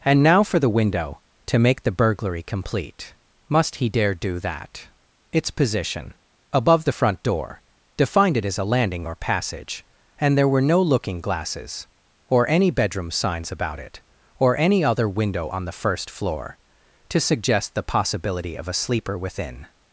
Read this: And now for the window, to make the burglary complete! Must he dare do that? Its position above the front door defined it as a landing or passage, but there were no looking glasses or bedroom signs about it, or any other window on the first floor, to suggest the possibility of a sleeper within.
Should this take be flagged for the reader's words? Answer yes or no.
yes